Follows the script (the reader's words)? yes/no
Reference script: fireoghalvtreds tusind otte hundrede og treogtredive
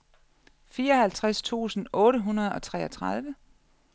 yes